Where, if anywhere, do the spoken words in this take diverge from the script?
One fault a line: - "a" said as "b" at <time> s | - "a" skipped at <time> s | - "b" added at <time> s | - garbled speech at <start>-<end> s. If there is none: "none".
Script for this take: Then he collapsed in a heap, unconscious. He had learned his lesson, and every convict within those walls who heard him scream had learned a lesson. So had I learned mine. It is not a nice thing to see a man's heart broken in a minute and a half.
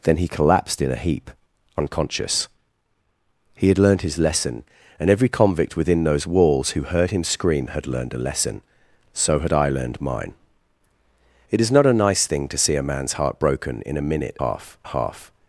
- "and" said as "half" at 14.4 s